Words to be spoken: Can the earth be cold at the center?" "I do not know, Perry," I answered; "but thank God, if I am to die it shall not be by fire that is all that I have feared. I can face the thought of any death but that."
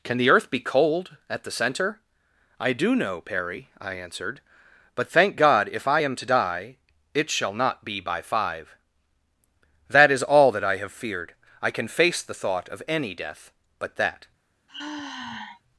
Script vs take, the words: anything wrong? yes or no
yes